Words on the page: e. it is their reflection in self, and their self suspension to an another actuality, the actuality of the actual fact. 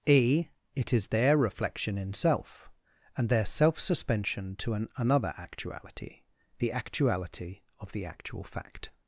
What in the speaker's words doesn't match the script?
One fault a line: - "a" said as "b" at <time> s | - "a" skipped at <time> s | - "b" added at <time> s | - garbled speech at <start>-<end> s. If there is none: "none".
none